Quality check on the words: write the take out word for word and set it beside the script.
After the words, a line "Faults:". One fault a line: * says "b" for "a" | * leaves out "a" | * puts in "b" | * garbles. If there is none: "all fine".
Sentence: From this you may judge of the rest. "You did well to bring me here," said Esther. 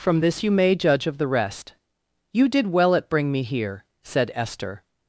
From this you may judge of the rest. "You did well at bring me here," said Esther.
Faults:
* says "at" for "to"